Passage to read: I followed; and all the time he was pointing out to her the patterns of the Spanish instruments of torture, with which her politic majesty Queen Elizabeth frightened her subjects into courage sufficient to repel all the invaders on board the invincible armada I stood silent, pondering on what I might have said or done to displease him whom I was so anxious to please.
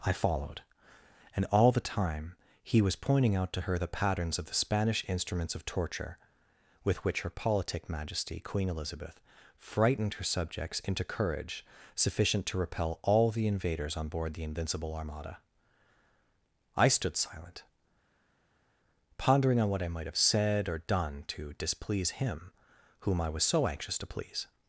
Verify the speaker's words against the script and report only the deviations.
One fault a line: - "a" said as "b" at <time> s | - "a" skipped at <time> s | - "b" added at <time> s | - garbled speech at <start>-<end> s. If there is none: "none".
none